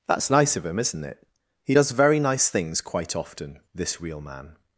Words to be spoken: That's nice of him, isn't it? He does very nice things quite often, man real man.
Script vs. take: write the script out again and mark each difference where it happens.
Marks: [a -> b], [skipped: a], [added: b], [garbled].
That's nice of him, isn't it? He does very nice things quite often, [man -> this] real man.